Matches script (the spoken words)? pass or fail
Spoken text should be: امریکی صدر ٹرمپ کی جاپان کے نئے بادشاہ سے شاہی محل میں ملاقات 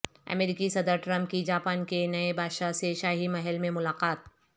pass